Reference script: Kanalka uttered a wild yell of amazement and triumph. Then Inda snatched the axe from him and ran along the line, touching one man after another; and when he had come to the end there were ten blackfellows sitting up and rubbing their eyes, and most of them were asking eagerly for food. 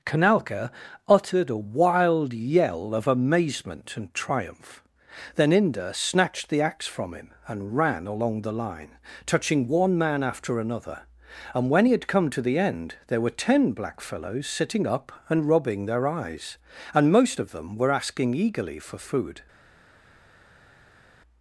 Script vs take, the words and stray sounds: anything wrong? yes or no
no